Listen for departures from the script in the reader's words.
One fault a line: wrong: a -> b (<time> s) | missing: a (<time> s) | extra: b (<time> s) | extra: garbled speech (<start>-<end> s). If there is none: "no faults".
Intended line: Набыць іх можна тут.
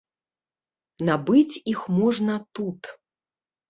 no faults